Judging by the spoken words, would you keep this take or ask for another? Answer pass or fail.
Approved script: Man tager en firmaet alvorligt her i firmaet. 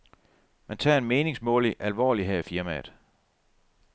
fail